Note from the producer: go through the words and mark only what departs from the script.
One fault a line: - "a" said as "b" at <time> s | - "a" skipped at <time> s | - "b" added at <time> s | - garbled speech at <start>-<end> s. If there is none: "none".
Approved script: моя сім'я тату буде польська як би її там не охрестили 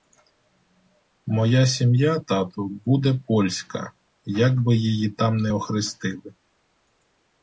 none